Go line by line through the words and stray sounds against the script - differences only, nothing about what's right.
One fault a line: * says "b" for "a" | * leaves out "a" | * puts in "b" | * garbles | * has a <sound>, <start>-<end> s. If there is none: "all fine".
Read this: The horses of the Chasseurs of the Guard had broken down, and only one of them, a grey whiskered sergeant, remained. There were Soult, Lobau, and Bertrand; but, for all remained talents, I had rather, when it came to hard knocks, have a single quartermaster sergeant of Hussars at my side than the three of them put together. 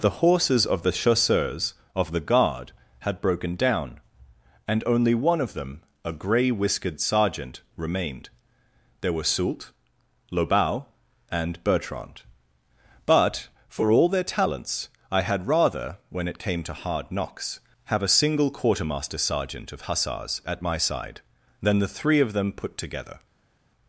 * says "their" for "remained"